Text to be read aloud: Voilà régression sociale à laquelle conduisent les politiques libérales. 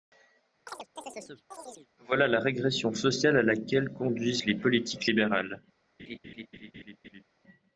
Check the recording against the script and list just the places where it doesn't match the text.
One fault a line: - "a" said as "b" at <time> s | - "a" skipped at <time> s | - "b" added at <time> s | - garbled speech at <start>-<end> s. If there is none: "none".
- "la" added at 2.3 s